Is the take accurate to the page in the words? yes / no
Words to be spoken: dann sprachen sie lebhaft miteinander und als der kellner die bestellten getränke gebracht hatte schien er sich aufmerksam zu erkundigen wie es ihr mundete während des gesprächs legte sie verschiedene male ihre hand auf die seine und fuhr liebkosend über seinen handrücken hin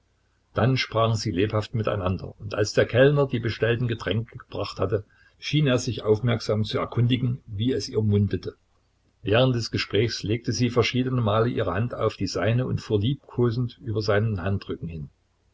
yes